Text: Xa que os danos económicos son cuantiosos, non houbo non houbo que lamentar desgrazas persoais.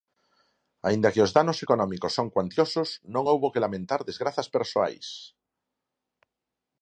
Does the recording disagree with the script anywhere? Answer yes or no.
yes